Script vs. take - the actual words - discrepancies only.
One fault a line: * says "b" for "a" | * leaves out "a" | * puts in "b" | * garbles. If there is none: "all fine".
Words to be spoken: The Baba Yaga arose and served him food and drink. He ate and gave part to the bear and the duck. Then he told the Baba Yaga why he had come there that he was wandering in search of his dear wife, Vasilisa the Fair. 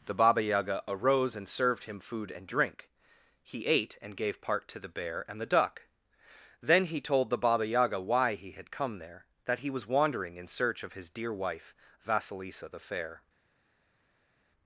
all fine